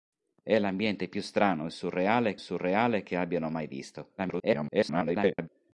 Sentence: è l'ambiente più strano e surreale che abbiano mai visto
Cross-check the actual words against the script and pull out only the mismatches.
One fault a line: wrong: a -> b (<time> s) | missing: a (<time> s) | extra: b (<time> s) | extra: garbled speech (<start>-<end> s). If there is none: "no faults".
extra: surreale (2.4 s)
extra: garbled speech (4.2-5.5 s)